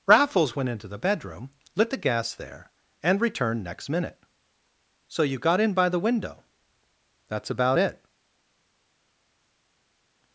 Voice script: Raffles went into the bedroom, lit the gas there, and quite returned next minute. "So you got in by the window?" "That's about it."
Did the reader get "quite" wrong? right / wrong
wrong